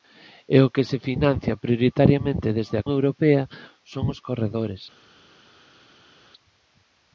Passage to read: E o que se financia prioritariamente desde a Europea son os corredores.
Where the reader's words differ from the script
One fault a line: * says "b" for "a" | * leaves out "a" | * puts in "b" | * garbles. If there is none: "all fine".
all fine